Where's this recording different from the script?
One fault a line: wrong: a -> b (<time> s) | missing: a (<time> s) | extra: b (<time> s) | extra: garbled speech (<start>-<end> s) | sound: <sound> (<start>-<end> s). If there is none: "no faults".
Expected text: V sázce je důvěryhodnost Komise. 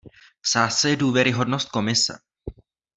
no faults